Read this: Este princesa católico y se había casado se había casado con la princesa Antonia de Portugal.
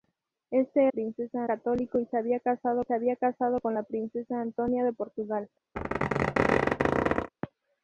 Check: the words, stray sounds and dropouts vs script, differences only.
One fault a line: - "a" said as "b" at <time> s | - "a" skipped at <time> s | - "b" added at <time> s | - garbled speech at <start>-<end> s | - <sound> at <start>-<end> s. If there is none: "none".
- squeak at 5.8-7.3 s